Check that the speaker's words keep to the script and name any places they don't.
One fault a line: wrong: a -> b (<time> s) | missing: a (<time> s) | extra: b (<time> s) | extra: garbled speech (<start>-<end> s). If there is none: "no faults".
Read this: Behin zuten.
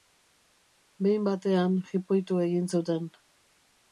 extra: batean jipoitu egin (1.3 s)